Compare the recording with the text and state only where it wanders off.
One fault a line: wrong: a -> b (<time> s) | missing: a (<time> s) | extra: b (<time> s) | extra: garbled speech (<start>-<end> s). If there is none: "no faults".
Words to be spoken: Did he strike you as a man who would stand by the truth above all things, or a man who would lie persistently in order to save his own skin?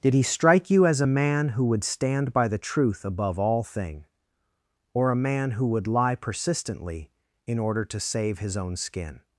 wrong: things -> thing (3.6 s)